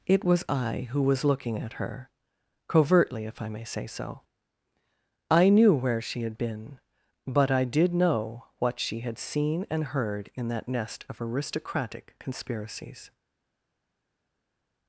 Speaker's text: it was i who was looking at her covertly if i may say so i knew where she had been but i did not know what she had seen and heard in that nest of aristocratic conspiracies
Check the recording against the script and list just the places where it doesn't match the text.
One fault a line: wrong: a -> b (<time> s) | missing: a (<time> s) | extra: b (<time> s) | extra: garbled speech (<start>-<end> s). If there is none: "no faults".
missing: not (7.9 s)